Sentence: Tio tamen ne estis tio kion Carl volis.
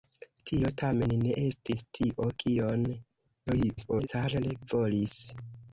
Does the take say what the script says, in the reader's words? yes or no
no